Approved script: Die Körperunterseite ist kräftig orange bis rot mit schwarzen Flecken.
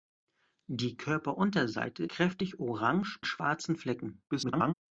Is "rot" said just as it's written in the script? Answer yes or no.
no